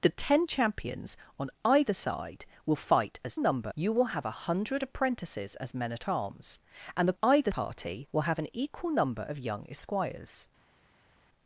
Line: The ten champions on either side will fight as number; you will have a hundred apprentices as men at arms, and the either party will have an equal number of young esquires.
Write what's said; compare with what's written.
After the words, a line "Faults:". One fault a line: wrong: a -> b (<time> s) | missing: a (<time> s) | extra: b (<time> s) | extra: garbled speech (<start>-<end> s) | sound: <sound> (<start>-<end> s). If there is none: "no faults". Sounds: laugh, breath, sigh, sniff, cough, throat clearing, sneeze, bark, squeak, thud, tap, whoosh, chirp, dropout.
The ten champions on either side will fight as number; you will have a hundred apprentices as men at arms, and the either party will have an equal number of young esquires.
Faults:
no faults